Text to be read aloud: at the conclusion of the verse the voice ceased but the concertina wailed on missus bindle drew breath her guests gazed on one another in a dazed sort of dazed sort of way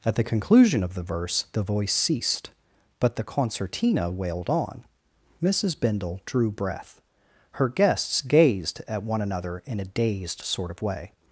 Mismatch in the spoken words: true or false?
true